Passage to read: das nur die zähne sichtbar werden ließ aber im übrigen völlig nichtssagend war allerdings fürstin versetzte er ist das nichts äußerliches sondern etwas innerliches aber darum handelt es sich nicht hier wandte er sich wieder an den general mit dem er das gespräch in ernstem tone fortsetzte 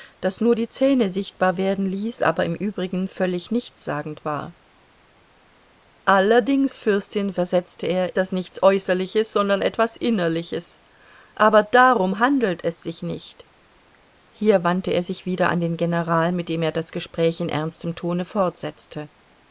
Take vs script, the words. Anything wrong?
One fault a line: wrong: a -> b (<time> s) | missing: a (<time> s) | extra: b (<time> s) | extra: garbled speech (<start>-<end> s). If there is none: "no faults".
missing: ist (8.1 s)